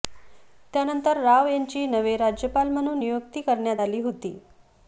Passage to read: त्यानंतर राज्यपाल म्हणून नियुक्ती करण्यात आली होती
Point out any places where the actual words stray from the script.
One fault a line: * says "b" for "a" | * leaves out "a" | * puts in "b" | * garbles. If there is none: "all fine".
* puts in "राव यांची नवे"